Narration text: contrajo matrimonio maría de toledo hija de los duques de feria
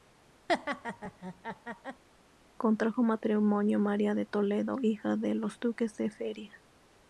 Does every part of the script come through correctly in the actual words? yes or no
yes